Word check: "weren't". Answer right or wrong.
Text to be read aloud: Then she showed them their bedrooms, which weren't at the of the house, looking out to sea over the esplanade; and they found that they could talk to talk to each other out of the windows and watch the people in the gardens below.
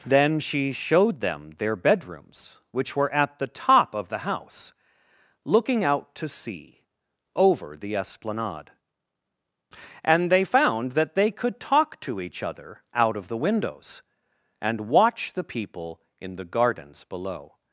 wrong